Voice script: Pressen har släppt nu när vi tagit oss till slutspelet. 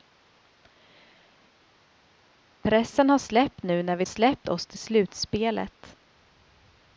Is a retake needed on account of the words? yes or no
yes